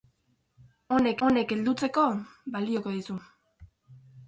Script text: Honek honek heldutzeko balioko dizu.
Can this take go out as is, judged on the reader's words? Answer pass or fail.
pass